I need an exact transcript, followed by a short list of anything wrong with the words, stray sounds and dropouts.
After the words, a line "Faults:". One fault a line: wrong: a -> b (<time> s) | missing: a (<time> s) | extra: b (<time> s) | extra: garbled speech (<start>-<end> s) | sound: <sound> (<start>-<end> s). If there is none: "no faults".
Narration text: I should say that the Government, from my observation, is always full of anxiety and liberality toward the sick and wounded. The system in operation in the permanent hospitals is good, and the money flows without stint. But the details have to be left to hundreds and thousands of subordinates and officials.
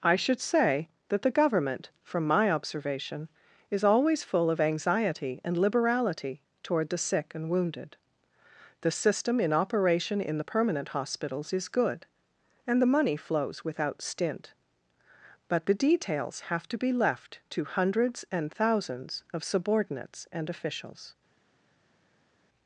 I should say that the Government, from my observation, is always full of anxiety and liberality toward the sick and wounded. The system in operation in the permanent hospitals is good, and the money flows without stint. But the details have to be left to hundreds and thousands of subordinates and officials.
Faults:
no faults